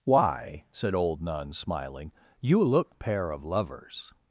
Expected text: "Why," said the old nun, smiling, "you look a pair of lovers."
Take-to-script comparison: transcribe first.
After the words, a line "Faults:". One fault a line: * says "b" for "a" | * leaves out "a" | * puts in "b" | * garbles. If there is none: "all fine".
"Why," said old nun, smiling, "you look pair of lovers."
Faults:
* leaves out "the"
* leaves out "a"